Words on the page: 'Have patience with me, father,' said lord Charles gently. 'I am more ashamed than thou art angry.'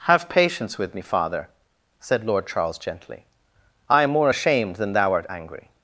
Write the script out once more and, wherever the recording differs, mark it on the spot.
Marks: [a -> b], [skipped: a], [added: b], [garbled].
'Have patience with me, father,' said lord Charles gently. 'I am more ashamed than thou art angry.'